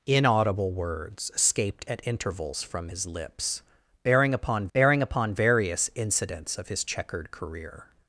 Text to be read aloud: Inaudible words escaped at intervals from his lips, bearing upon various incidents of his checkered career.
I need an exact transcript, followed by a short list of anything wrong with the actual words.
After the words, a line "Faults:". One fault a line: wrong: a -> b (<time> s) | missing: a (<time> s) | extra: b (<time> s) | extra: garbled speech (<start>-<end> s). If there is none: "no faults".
Inaudible words escaped at intervals from his lips, bearing upon bearing upon various incidents of his checkered career.
Faults:
extra: bearing upon (4.7 s)